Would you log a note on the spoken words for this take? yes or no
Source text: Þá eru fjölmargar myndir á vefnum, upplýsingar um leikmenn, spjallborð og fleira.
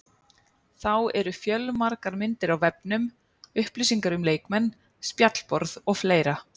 no